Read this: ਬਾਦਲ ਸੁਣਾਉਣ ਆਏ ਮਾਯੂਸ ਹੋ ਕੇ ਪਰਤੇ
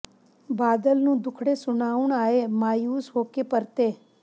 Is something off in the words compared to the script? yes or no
yes